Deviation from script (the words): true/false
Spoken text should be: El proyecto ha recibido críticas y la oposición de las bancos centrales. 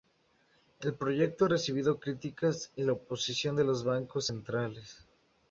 true